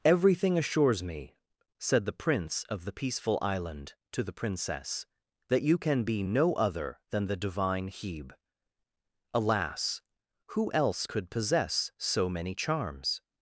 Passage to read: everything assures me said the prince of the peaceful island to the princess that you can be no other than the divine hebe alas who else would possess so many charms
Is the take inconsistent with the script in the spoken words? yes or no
yes